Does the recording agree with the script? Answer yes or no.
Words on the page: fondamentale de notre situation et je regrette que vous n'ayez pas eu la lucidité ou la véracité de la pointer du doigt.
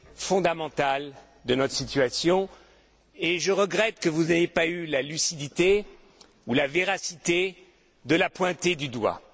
yes